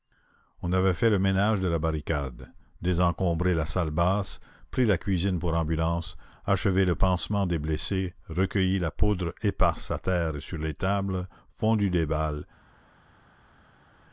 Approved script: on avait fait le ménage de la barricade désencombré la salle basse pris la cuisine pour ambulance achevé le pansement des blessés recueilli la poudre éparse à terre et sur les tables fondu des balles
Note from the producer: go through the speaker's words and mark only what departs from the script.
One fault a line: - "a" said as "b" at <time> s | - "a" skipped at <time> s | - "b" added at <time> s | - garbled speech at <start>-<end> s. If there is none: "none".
none